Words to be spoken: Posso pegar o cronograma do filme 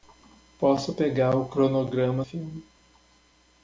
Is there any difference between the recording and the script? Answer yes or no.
yes